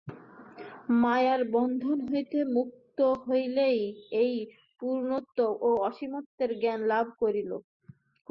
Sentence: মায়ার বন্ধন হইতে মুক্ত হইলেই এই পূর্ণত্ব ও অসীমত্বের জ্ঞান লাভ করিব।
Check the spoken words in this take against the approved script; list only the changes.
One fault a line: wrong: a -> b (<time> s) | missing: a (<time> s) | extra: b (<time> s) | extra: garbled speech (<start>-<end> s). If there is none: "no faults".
no faults